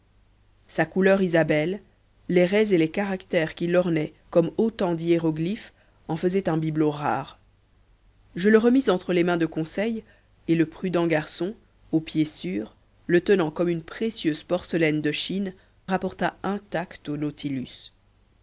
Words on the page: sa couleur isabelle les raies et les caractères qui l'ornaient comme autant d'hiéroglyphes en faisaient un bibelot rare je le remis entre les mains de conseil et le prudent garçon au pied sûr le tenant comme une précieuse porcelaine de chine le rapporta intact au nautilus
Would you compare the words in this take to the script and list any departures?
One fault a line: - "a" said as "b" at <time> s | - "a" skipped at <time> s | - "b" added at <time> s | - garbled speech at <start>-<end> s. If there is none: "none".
- "le" skipped at 15.5 s